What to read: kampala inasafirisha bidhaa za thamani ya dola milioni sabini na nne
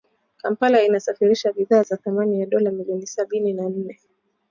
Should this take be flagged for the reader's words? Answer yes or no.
no